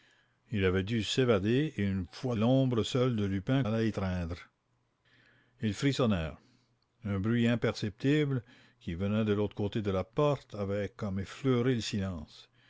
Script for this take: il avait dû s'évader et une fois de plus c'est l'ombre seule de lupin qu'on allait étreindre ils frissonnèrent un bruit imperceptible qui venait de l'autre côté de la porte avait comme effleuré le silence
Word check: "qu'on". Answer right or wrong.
wrong